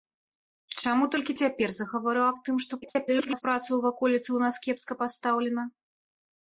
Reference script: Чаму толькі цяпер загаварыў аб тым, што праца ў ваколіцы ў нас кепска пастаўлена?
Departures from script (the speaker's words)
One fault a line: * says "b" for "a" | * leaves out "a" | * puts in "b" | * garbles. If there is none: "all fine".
* garbles